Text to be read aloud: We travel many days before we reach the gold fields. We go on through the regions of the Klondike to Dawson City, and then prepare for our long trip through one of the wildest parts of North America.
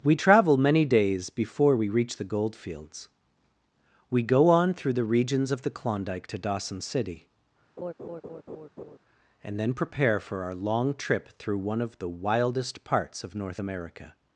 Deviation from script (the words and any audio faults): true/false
true